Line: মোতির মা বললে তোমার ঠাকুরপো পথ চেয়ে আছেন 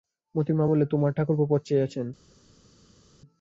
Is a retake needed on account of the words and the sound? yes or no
no